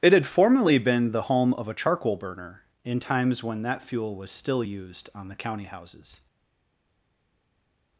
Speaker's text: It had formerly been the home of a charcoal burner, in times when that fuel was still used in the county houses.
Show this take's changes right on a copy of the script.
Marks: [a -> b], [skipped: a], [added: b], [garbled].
It had formerly been the home of a charcoal burner, in times when that fuel was still used [in -> on] the county houses.